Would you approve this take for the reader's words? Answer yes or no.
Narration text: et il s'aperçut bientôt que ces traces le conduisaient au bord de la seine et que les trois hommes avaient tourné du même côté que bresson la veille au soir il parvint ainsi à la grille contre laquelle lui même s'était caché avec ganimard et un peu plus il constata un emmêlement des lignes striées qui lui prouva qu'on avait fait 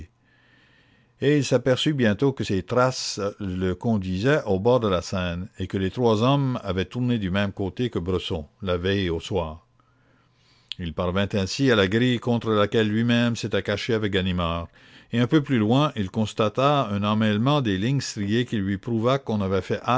no